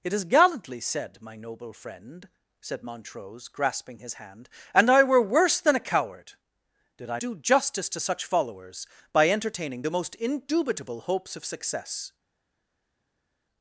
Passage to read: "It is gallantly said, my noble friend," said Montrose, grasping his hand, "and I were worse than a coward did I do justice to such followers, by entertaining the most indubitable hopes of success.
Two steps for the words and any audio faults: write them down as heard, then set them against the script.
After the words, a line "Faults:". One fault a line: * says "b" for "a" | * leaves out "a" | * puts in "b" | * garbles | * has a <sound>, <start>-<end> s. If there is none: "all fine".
"It is gallantly said, my noble friend," said Montrose, grasping his hand, "and I were worse than a coward did I do justice to such followers, by entertaining the most indubitable hopes of success.
Faults:
all fine